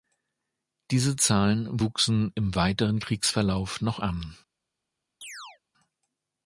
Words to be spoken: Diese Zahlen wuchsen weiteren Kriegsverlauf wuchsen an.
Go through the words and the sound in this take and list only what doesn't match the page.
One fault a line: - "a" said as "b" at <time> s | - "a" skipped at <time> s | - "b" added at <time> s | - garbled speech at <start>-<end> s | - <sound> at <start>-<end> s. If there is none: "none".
- "im" added at 2.3 s
- "wuchsen" said as "noch" at 3.8 s
- chirp at 5.2-5.6 s